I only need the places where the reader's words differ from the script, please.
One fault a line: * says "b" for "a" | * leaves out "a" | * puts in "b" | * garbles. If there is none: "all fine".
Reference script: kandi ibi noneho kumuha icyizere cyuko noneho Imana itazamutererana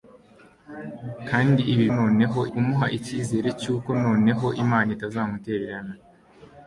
all fine